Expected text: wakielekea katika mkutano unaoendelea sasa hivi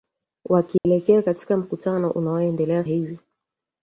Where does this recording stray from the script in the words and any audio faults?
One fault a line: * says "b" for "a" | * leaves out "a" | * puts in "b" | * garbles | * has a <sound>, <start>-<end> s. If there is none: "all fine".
* has a dropout, 0.8-0.9 s
* leaves out "sasa"